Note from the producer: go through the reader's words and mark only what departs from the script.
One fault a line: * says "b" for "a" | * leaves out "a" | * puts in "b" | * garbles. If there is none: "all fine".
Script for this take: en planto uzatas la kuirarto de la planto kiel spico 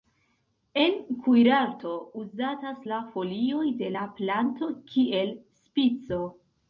* says "kuirarto" for "planto"
* says "folioj" for "kuirarto"